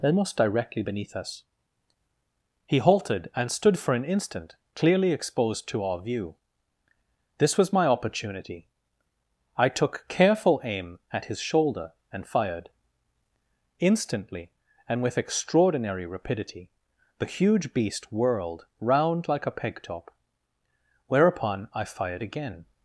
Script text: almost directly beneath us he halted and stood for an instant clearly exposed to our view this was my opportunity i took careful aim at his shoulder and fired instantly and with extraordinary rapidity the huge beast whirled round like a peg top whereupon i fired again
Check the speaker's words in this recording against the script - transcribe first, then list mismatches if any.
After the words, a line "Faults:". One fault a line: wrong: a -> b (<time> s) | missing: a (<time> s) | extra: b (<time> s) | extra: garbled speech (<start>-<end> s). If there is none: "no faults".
almost directly beneath us he halted and stood for an instant clearly exposed to our view this was my opportunity i took careful aim at his shoulder and fired instantly and with extraordinary rapidity the huge beast whirled round like a peg top whereupon i fired again
Faults:
no faults